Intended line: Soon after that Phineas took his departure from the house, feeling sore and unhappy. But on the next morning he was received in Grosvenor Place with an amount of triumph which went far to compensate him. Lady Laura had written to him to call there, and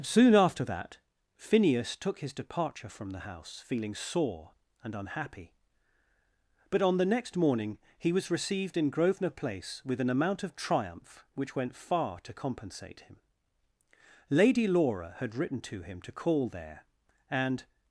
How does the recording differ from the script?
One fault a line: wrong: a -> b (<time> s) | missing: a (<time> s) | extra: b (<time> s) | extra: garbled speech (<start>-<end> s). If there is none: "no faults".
no faults